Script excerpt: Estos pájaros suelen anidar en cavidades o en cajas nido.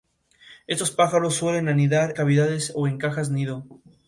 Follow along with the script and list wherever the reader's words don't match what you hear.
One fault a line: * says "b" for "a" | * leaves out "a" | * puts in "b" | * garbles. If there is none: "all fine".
* leaves out "en"